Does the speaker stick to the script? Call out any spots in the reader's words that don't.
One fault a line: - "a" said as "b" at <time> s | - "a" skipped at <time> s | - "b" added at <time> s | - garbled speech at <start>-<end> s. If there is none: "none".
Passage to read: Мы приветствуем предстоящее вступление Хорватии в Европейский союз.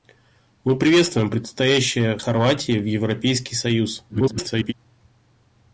- "вступление" skipped at 2.2 s
- garbled speech at 4.1-4.7 s